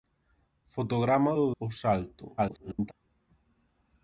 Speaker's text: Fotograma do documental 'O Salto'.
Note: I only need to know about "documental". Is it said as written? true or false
false